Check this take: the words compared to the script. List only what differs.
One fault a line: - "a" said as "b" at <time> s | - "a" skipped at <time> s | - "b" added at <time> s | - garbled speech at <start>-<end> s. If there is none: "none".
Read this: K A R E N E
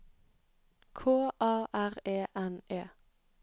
none